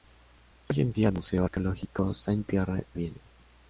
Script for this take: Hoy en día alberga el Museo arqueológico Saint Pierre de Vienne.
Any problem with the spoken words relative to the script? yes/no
yes